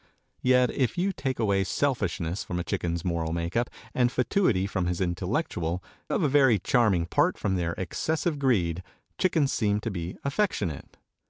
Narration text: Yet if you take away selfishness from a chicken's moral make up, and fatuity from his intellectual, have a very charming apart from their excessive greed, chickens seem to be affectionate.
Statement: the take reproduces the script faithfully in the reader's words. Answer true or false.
true